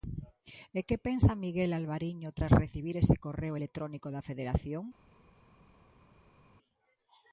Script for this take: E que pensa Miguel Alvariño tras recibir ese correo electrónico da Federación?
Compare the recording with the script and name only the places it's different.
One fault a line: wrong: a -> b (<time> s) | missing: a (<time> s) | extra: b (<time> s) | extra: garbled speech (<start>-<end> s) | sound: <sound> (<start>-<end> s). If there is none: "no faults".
no faults